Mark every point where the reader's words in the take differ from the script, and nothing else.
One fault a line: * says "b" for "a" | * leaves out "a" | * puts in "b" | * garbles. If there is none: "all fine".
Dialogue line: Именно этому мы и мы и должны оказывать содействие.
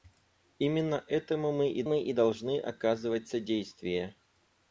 all fine